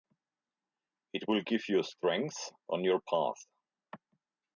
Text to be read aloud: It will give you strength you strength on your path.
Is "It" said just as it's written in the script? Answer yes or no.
yes